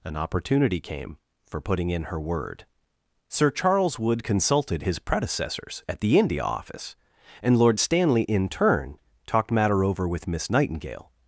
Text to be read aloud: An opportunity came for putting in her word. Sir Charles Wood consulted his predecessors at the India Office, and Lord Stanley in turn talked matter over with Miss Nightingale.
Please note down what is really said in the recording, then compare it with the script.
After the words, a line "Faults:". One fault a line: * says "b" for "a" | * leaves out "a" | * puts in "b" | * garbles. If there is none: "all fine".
An opportunity came for putting in her word. Sir Charles Wood consulted his predecessors at the India Office, and Lord Stanley in turn talked matter over with Miss Nightingale.
Faults:
all fine